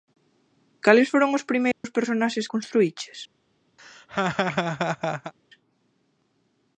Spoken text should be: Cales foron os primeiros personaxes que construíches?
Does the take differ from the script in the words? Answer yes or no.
yes